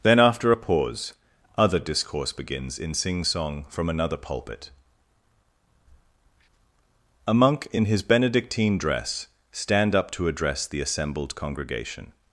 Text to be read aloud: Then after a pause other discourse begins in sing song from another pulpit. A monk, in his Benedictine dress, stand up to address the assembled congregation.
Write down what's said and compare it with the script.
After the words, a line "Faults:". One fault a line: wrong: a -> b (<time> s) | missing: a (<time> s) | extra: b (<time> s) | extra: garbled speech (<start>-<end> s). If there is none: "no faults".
Then after a pause other discourse begins in sing song from another pulpit. A monk, in his Benedictine dress, stand up to address the assembled congregation.
Faults:
no faults